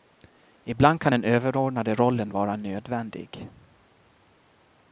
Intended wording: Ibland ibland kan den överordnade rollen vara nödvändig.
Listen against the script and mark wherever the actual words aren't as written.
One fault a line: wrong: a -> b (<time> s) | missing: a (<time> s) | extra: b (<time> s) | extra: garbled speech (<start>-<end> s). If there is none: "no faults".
missing: ibland (1.0 s)